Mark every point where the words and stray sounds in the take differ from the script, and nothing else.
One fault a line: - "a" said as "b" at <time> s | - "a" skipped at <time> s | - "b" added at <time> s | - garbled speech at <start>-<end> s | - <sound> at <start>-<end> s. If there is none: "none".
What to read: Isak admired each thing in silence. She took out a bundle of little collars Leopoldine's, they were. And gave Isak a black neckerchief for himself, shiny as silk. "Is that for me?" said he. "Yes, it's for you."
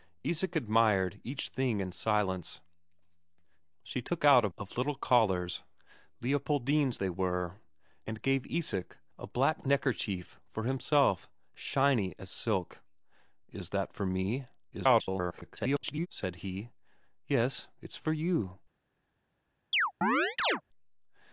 - "bundle" skipped at 4.5 s
- garbled speech at 14.7-16.1 s
- chirp at 19.7-20.6 s